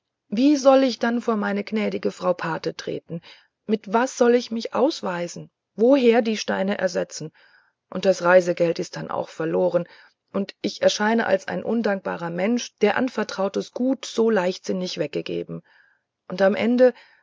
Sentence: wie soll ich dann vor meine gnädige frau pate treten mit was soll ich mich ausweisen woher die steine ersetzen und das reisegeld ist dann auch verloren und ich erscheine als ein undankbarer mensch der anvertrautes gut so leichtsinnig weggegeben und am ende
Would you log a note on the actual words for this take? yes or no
no